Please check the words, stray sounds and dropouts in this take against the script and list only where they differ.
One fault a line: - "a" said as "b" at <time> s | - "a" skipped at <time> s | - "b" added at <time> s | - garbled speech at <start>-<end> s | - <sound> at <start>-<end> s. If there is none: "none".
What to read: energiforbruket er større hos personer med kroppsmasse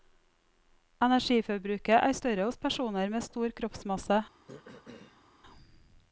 - "stor" added at 3.3 s
- throat clearing at 4.5-5.2 s